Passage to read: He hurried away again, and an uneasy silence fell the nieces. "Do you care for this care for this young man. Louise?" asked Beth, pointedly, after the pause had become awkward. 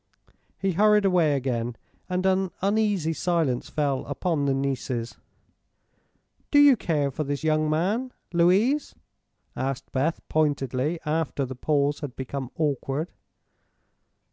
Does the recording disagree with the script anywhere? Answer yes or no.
yes